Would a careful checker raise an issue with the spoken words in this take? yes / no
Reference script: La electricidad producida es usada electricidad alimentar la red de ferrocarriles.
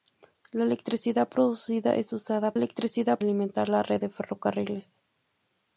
no